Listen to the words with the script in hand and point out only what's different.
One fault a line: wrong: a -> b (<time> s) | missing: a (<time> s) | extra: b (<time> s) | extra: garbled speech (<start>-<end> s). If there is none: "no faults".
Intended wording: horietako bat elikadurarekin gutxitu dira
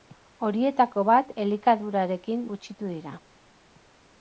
no faults